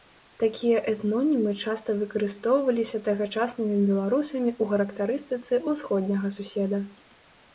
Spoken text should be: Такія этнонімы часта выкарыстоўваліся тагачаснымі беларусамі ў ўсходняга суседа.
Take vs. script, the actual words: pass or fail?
fail